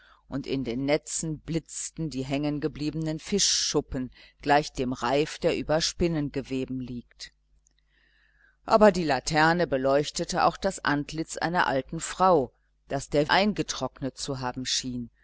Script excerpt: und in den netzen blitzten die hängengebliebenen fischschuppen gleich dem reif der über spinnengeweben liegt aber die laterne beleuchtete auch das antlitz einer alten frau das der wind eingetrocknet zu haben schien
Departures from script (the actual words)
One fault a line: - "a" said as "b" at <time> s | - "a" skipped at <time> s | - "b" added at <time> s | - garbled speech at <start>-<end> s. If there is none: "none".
- "wind" skipped at 13.3 s